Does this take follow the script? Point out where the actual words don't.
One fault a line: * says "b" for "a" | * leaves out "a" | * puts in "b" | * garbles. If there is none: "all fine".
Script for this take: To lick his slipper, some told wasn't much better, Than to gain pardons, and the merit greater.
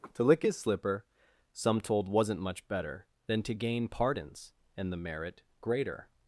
all fine